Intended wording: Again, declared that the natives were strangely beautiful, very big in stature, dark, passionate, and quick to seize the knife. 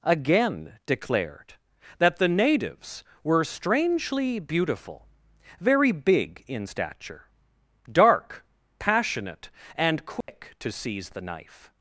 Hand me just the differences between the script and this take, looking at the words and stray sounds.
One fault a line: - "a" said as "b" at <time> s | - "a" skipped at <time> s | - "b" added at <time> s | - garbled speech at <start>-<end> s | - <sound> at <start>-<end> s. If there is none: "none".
- dropout at 10.2-10.3 s